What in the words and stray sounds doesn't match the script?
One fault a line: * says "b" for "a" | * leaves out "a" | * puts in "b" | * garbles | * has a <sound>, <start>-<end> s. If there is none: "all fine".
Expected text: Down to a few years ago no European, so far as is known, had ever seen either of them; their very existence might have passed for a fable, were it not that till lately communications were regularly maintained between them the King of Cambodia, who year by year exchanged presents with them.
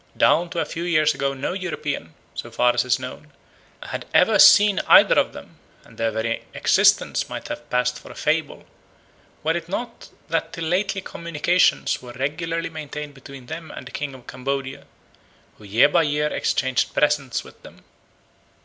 * puts in "and"
* puts in "and"